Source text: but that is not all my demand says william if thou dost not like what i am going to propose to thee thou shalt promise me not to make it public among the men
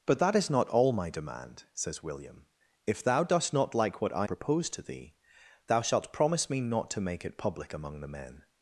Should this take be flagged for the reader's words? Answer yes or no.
yes